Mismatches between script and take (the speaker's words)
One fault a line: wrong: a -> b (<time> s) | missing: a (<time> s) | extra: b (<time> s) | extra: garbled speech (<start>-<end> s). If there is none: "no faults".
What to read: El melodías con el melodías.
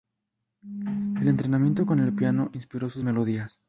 wrong: melodías -> entrenamiento (1.3 s)
extra: piano inspiró sus (2.1 s)